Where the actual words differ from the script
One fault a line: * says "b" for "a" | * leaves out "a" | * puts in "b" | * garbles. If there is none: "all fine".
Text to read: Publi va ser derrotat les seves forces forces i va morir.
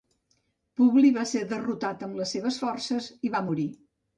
* puts in "amb"
* leaves out "forces"